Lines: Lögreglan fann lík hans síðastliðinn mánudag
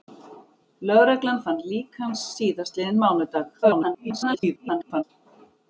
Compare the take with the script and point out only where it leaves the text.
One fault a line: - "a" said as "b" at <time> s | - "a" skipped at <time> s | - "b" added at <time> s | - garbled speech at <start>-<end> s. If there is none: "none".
- garbled speech at 3.6-5.0 s